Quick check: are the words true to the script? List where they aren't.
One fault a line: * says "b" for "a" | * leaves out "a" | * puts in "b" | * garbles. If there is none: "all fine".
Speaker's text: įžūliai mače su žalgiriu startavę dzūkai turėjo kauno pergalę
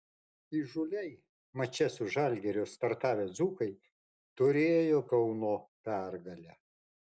all fine